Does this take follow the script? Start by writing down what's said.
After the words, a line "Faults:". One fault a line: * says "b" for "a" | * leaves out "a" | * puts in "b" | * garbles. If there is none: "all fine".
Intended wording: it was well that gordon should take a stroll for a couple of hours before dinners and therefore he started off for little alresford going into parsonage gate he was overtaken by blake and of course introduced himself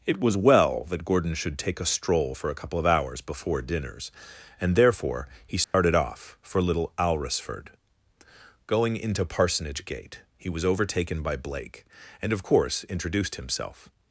it was well that gordon should take a stroll for a couple of hours before dinners and therefore he started off for little alresford going into parsonage gate he was overtaken by blake and of course introduced himself
Faults:
all fine